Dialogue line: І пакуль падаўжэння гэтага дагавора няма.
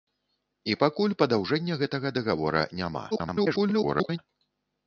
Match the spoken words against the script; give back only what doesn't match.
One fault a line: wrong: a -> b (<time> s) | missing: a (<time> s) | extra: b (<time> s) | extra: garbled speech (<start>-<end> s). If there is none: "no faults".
extra: garbled speech (3.1-4.2 s)